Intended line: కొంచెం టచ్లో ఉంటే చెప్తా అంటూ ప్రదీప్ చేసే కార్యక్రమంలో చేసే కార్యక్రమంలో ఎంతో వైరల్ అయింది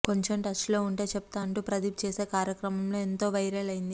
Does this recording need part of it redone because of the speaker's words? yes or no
yes